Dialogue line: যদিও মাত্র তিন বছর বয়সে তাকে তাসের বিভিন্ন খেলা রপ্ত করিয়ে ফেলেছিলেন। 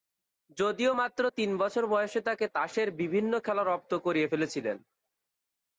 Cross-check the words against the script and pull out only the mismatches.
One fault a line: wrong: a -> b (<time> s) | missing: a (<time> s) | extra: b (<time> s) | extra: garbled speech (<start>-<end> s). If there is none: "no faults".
no faults